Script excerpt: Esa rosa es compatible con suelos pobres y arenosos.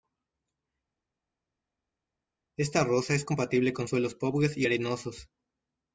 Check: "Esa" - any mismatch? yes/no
yes